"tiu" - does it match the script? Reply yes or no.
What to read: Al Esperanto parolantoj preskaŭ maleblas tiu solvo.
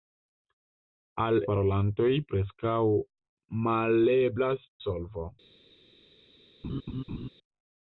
no